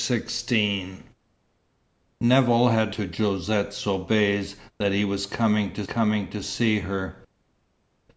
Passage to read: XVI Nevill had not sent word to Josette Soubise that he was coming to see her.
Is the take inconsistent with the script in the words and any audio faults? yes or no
yes